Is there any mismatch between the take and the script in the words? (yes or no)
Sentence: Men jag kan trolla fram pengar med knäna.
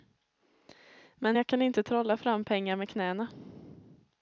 yes